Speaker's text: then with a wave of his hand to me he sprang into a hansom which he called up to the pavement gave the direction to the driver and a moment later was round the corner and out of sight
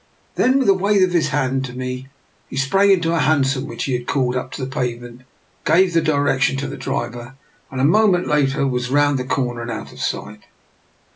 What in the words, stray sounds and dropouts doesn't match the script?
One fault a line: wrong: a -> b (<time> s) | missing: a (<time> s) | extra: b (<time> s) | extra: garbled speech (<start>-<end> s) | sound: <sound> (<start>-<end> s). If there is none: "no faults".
extra: had (3.9 s)